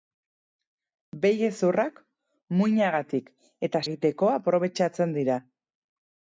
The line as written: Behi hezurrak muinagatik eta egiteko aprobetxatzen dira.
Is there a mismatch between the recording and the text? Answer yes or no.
no